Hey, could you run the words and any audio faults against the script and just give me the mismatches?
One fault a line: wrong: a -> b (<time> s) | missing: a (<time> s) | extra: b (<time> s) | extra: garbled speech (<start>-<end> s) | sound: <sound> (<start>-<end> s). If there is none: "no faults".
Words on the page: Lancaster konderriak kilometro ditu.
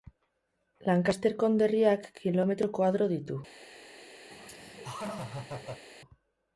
extra: koadro (2.8 s)
sound: laugh (4.3-5.9 s)